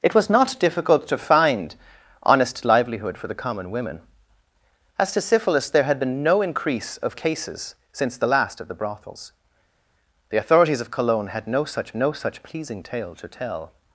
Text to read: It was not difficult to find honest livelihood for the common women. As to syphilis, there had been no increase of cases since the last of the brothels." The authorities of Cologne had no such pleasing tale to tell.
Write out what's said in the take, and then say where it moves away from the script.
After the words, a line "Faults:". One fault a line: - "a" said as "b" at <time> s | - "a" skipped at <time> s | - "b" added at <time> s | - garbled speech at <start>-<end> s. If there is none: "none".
It was not difficult to find honest livelihood for the common women. As to syphilis, there had been no increase of cases since the last of the brothels." The authorities of Cologne had no such no such pleasing tale to tell.
Faults:
- "no such" added at 11.9 s